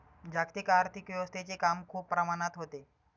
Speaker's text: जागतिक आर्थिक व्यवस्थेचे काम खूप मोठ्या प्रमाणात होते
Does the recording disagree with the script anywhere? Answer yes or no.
yes